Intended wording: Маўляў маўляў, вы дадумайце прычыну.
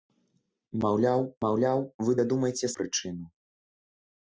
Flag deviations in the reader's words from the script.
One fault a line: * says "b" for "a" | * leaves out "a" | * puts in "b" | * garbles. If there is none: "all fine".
all fine